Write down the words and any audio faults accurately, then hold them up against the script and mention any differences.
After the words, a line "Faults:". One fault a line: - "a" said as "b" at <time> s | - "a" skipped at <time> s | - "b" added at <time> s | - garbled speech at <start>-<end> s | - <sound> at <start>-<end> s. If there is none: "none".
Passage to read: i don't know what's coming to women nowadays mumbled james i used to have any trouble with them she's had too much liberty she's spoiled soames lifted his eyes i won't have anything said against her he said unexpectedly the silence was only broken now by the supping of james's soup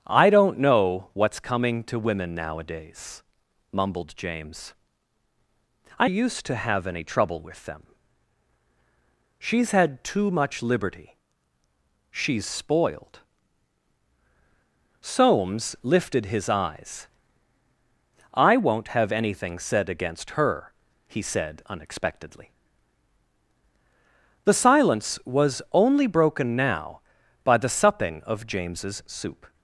i don't know what's coming to women nowadays mumbled james i used to have any trouble with them she's had too much liberty she's spoiled soames lifted his eyes i won't have anything said against her he said unexpectedly the silence was only broken now by the supping of james's soup
Faults:
none